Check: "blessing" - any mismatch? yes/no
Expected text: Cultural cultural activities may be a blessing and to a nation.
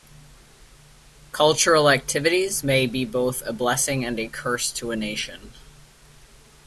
no